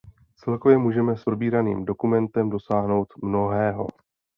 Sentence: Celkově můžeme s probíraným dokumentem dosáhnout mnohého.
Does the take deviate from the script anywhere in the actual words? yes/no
no